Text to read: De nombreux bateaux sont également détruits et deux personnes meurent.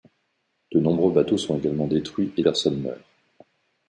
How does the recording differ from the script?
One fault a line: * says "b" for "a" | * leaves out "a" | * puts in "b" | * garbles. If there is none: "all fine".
* leaves out "deux"